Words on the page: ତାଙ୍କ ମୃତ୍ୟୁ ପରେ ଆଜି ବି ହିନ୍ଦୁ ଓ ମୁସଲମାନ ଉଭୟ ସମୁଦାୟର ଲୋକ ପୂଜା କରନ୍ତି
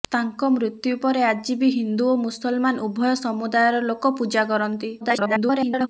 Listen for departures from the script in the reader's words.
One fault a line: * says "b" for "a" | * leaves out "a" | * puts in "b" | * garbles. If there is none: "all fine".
* garbles